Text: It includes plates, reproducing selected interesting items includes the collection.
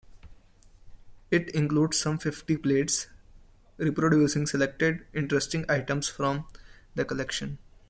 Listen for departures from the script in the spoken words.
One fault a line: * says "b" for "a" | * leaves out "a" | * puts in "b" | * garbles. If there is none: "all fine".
* puts in "some fifty"
* says "from" for "includes"